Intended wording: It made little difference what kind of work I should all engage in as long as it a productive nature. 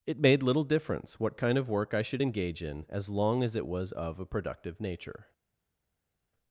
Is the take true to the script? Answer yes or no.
no